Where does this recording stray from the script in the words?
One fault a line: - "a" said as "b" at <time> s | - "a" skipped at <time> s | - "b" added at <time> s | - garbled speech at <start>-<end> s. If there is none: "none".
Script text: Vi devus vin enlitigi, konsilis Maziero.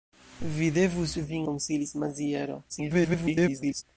- "enlitigi" skipped at 1.4 s
- garbled speech at 2.7-3.8 s